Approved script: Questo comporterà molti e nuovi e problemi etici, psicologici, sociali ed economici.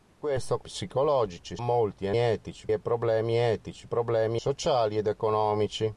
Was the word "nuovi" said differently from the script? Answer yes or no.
yes